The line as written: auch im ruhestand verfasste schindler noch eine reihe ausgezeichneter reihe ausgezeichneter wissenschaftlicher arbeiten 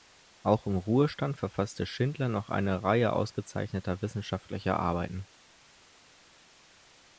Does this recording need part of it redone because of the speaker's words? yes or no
yes